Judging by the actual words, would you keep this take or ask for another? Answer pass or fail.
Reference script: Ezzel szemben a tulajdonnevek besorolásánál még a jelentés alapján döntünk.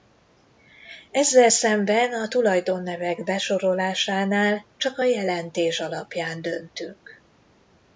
fail